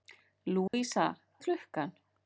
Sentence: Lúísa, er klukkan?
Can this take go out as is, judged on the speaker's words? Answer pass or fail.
pass